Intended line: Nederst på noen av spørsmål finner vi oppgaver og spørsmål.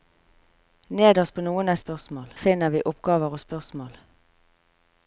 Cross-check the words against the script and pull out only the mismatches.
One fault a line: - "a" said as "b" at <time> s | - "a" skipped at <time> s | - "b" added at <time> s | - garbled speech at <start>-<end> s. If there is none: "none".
none